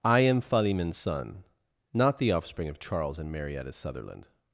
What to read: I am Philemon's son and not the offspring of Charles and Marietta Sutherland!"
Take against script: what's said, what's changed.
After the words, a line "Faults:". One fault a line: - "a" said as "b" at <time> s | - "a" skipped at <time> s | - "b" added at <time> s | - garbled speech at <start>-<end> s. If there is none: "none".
I am Philemon's son not the offspring of Charles and Marietta Sutherland!"
Faults:
- "and" skipped at 1.4 s